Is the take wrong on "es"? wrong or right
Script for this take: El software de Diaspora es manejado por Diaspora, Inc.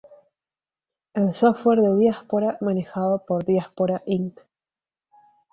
wrong